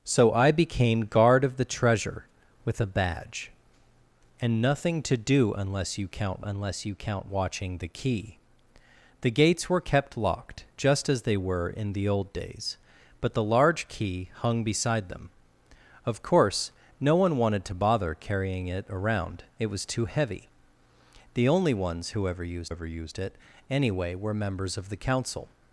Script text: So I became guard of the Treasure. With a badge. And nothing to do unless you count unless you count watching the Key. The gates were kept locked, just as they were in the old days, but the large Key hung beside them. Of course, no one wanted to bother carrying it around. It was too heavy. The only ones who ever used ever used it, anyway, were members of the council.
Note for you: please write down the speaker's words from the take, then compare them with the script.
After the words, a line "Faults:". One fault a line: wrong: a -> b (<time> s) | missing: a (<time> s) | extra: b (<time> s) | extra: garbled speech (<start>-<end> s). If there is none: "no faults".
So I became guard of the Treasure. With a badge. And nothing to do unless you count unless you count watching the Key. The gates were kept locked, just as they were in the old days, but the large Key hung beside them. Of course, no one wanted to bother carrying it around. It was too heavy. The only ones who ever used ever used it, anyway, were members of the council.
Faults:
no faults